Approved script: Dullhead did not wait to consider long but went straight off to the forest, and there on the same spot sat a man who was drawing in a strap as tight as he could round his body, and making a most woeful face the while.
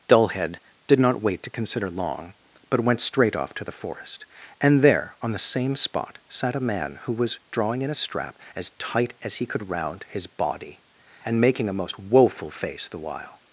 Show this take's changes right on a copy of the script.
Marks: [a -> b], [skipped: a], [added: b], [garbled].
Dullhead did not wait to consider long but went straight off to the forest, and there on the same spot sat a man who was drawing in a strap as tight as he could round his body, and making a most woeful face the while.